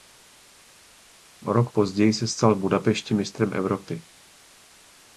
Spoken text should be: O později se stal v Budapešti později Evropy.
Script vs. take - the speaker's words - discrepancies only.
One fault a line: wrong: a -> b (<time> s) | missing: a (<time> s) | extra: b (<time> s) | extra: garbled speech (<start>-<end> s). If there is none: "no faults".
extra: rok (1.5 s)
wrong: později -> mistrem (3.1 s)